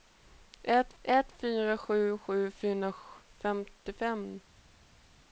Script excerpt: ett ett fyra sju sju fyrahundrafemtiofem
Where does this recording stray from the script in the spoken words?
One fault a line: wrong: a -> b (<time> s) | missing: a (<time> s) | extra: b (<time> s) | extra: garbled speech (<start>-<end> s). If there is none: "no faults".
no faults